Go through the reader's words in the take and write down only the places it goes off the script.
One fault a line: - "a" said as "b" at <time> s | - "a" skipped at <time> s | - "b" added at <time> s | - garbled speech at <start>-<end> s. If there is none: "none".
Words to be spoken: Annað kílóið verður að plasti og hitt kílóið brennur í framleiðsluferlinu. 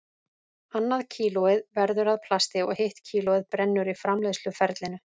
none